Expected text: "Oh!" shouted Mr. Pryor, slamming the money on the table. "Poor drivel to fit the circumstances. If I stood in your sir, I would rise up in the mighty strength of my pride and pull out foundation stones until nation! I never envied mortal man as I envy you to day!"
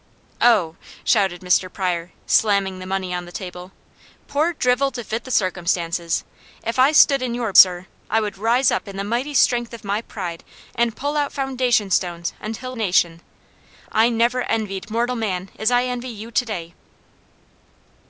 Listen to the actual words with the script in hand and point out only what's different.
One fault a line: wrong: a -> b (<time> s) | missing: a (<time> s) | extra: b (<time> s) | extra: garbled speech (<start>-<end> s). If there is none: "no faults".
no faults